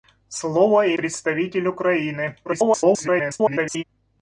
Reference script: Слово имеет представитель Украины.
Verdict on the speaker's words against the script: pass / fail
fail